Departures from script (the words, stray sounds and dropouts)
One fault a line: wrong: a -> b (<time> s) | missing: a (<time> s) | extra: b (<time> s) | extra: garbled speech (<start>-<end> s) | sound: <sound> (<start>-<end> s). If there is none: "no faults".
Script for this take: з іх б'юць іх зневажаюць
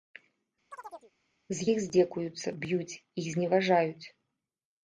sound: chirp (0.7-1.1 s)
extra: здзекуюцца (1.8 s)